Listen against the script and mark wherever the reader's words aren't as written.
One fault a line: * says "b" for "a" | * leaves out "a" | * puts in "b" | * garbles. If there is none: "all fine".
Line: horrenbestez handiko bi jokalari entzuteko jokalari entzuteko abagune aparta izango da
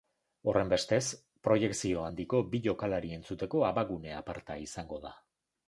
* puts in "proiekzio"
* leaves out "jokalari entzuteko"